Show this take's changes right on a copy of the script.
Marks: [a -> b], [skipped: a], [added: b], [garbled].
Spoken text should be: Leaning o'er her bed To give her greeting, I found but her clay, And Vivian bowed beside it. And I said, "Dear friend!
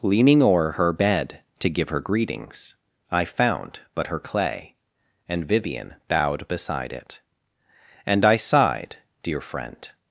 Leaning o'er her bed To give her [greeting, -> greetings] I found but her clay, And Vivian bowed beside it. And I [said, -> sighed] "Dear friend!